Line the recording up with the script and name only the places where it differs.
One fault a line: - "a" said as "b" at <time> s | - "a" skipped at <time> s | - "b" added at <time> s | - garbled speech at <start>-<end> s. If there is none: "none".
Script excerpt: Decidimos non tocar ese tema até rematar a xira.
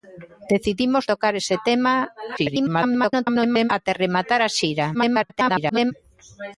- "non" skipped at 1.0 s
- garbled speech at 2.4-3.7 s
- garbled speech at 4.9-5.9 s